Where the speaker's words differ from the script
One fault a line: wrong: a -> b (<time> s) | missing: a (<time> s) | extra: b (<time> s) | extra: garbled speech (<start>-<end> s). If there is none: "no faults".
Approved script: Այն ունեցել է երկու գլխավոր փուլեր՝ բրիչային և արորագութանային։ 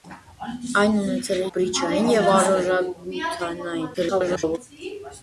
missing: երկու գլխավոր փուլեր (1.5 s)
extra: garbled speech (3.9-4.6 s)